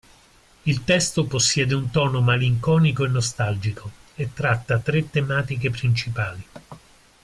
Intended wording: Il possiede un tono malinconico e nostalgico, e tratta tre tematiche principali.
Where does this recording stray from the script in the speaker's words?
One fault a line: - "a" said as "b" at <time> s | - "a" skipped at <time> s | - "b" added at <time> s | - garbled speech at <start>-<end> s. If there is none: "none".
- "testo" added at 0.8 s